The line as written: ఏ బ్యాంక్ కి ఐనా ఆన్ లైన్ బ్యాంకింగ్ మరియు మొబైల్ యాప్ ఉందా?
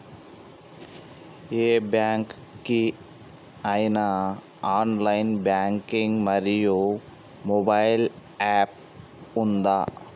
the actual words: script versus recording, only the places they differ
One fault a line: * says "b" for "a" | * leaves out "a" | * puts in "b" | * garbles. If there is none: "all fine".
all fine